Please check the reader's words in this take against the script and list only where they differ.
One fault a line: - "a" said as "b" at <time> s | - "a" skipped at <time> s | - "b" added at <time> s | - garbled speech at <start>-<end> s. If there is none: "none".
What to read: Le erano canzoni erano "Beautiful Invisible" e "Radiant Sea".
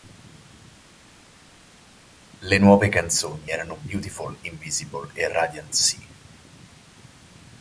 - "erano" said as "nuove" at 2.5 s